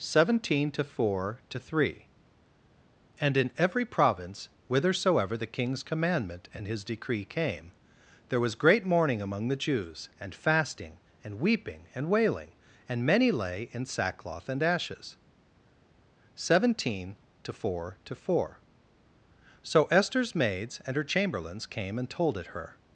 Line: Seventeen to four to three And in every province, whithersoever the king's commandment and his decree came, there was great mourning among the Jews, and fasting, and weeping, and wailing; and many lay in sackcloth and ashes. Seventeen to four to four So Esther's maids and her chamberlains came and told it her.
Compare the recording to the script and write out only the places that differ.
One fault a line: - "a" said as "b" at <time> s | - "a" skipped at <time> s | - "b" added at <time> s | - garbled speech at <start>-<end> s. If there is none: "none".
none